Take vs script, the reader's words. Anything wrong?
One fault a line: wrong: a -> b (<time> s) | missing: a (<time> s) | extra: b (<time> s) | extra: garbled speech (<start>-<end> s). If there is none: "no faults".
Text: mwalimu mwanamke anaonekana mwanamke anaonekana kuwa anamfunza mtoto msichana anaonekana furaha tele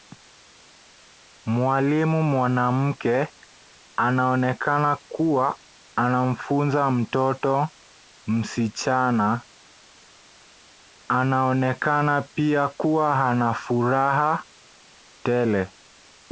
missing: mwanamke anaonekana (5.0 s)
extra: pia kuwa ana (12.2 s)